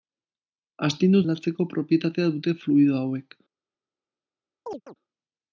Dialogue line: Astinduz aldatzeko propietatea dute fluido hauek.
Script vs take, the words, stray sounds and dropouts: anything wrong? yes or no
yes